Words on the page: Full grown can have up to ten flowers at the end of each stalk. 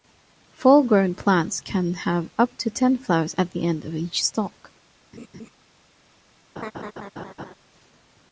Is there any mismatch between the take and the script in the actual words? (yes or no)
yes